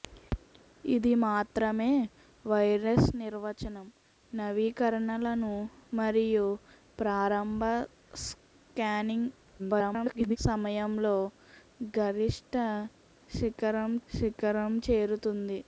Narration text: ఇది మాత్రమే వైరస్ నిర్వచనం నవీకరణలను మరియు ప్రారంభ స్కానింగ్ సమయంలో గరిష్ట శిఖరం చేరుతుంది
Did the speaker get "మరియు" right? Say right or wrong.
right